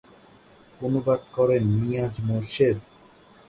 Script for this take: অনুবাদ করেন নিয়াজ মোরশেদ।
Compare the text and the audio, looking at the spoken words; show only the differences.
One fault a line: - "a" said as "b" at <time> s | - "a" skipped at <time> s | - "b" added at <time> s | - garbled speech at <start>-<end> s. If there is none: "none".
none